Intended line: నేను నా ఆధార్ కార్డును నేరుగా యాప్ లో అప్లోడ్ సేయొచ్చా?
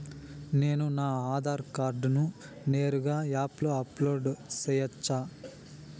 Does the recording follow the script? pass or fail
pass